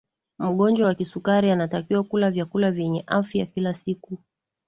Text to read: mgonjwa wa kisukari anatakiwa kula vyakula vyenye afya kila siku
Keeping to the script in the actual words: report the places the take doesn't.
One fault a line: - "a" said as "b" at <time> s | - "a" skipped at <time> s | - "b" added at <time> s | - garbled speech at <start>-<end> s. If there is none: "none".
none